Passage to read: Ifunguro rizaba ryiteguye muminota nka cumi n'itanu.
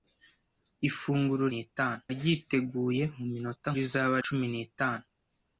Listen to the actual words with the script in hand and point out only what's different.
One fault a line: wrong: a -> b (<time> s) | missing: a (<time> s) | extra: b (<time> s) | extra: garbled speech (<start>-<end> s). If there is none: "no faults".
wrong: rizaba -> n'itanu (1.5 s)
wrong: nka -> rizaba (3.8 s)